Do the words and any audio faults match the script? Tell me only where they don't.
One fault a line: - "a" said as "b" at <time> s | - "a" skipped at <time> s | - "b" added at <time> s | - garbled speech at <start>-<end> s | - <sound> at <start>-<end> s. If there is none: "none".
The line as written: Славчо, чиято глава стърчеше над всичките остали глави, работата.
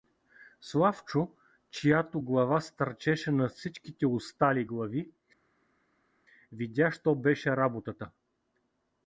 - "видя що беше" added at 6.5 s